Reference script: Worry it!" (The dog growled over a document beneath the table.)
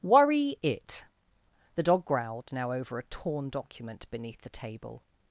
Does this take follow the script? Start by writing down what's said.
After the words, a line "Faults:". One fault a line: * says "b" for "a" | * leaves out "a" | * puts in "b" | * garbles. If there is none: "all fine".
Worry it!" (The dog growled now over a torn document beneath the table.)
Faults:
* puts in "now"
* puts in "torn"